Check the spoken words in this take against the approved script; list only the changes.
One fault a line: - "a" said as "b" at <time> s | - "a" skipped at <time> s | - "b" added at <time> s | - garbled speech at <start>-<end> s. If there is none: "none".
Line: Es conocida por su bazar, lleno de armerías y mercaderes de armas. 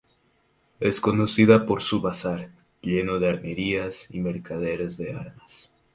none